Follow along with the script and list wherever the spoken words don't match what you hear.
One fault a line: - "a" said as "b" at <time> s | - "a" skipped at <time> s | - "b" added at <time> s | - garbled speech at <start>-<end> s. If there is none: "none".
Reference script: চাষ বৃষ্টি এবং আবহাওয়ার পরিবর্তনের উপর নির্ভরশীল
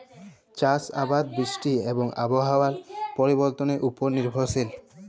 - "আবাদ" added at 1.0 s